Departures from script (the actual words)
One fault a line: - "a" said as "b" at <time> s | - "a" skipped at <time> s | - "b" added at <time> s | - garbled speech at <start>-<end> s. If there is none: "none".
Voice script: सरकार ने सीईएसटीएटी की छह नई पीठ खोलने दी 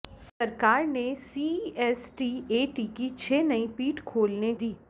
none